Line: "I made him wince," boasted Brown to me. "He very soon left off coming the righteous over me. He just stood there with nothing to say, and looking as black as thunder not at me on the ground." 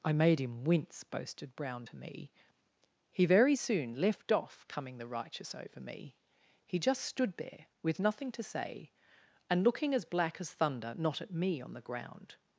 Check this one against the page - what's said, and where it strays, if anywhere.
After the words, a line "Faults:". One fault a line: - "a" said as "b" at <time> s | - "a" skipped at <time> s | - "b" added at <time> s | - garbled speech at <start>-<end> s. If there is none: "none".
"I made him wince," boasted Brown to me. "He very soon left off coming the righteous over me. He just stood there with nothing to say, and looking as black as thunder not at me on the ground."
Faults:
none